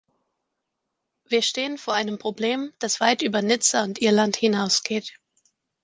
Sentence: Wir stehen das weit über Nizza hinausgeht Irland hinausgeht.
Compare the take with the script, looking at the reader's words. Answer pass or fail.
fail